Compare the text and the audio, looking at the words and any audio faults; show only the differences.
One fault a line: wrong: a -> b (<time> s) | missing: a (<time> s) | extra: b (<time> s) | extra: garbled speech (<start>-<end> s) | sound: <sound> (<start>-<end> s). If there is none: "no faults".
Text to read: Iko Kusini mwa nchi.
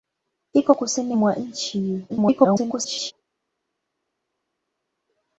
extra: garbled speech (2.1-3.1 s)